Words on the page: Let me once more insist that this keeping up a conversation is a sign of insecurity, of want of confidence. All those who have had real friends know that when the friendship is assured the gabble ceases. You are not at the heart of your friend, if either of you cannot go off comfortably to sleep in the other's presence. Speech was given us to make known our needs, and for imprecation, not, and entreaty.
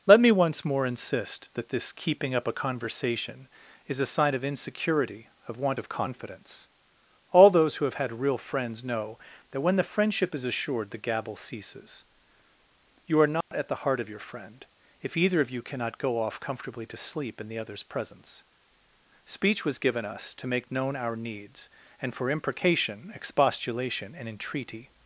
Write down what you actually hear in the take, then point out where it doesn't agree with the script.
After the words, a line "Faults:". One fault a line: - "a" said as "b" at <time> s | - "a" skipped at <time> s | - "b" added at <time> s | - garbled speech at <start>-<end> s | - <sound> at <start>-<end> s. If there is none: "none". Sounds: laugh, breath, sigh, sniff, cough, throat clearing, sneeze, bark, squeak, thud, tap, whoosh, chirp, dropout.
Let me once more insist that this keeping up a conversation is a sign of insecurity, of want of confidence. All those who have had real friends know that when the friendship is assured the gabble ceases. You are not at the heart of your friend, if either of you cannot go off comfortably to sleep in the other's presence. Speech was given us to make known our needs, and for imprecation, expostulation, and entreaty.
Faults:
- dropout at 13.4-13.5 s
- "not" said as "expostulation" at 23.1 s